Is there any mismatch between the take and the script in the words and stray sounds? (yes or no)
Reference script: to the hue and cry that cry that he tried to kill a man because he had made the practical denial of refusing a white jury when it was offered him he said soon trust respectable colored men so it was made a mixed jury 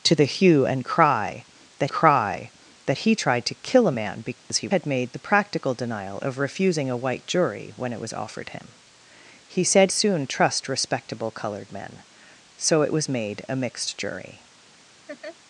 yes